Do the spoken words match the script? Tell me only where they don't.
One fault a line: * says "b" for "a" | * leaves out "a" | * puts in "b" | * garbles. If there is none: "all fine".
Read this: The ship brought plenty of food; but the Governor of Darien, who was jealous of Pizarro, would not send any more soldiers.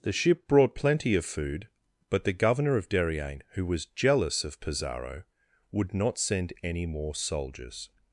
all fine